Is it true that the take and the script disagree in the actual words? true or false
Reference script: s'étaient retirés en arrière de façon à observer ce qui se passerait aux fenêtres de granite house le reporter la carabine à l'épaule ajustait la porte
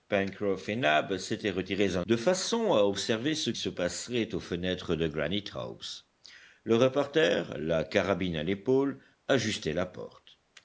true